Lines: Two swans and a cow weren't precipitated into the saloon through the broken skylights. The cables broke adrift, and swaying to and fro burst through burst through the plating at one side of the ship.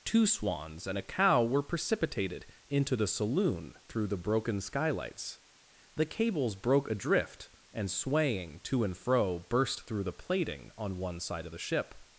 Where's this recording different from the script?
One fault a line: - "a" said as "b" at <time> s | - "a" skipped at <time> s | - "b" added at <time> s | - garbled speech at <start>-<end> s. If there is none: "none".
- "weren't" said as "were" at 1.4 s
- "burst through" skipped at 10.0 s
- "at" said as "on" at 10.8 s